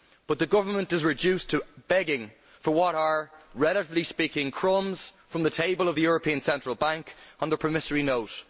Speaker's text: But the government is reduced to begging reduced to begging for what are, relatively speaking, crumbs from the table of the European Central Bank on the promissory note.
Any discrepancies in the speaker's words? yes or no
yes